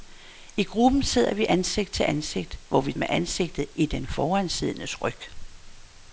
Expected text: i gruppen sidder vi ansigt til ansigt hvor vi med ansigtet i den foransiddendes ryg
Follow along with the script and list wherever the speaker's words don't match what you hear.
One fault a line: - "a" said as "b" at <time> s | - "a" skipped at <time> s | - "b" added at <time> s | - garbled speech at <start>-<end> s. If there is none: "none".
none